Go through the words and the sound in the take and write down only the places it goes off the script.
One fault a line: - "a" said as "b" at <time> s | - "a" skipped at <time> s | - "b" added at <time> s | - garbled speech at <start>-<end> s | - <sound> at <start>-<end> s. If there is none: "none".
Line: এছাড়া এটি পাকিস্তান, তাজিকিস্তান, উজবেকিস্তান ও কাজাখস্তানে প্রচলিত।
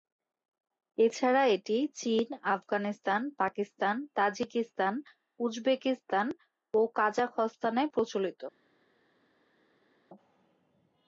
- "চীন আফগানিস্তান" added at 1.9 s